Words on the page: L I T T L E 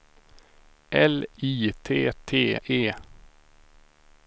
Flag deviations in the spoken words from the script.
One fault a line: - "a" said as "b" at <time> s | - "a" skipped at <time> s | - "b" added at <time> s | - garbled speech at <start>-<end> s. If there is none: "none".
- "L" skipped at 2.6 s